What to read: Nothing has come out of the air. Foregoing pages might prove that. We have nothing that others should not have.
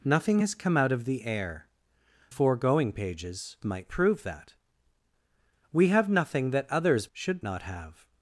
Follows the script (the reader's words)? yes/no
yes